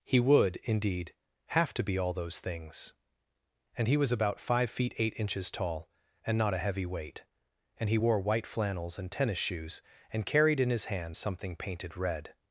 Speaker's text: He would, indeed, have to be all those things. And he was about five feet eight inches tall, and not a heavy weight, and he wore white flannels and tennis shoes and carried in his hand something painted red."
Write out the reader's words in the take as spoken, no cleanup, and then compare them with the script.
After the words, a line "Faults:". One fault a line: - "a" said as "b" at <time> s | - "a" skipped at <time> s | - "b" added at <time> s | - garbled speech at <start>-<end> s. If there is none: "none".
He would, indeed, have to be all those things. And he was about five feet eight inches tall, and not a heavy weight, and he wore white flannels and tennis shoes and carried in his hand something painted red."
Faults:
none